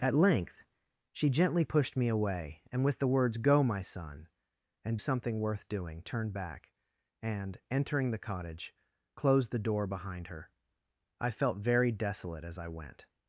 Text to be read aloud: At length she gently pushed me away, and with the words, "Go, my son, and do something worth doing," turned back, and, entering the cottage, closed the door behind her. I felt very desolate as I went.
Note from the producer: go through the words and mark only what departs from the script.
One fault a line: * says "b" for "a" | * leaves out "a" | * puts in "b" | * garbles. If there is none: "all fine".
* leaves out "do"